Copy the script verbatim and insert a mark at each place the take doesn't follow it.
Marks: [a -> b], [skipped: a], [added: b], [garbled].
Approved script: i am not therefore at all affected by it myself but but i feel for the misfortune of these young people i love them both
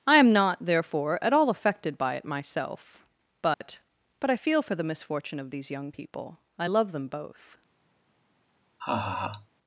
i am not therefore at all affected by it myself but but i feel for the misfortune of these young people i love them both